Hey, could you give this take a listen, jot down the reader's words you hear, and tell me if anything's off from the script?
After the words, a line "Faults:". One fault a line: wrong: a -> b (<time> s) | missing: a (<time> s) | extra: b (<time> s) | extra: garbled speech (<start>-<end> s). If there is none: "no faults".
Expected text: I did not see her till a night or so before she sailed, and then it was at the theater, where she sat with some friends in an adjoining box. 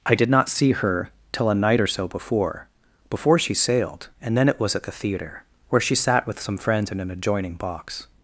I did not see her till a night or so before before she sailed, and then it was at the theater, where she sat with some friends in an adjoining box.
Faults:
extra: before (3.1 s)